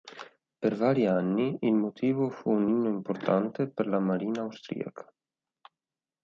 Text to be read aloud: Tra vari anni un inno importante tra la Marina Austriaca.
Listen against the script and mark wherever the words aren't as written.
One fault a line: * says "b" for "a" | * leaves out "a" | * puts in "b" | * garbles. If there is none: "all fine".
* says "Per" for "Tra"
* puts in "il motivo fu"
* says "per" for "tra"